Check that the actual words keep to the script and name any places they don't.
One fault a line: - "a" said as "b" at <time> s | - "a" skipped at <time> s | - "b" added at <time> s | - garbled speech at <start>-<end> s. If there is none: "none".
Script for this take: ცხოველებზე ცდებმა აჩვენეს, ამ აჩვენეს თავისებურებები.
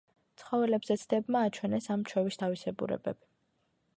- "აჩვენეს" said as "ჩვევის" at 2.1 s